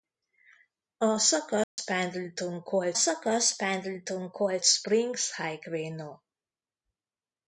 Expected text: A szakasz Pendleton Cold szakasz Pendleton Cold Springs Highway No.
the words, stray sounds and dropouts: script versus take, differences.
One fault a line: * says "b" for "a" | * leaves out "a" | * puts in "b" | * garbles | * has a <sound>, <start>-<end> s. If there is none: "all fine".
* has a dropout, 1.6-1.8 s